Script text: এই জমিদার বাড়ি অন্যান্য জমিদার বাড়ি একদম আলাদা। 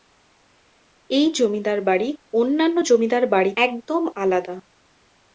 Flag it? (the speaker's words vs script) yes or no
no